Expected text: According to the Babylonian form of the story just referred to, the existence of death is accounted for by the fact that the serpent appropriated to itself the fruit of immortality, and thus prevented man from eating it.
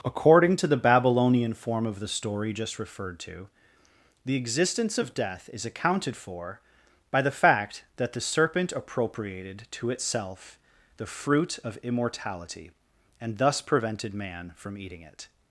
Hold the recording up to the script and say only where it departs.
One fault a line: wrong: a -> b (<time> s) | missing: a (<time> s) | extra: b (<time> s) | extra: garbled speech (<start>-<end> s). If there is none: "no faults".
no faults